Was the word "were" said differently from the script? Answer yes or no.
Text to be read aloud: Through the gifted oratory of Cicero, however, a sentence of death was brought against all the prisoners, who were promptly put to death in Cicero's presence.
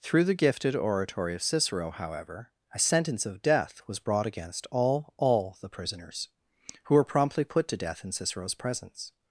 no